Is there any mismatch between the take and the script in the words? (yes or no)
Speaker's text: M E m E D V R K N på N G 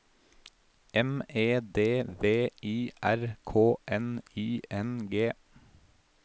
yes